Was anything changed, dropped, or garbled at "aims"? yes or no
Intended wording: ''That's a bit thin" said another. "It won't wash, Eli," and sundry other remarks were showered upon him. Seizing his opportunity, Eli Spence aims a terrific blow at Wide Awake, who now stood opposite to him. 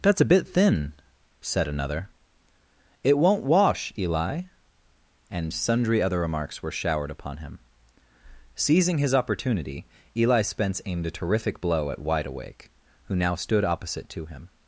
yes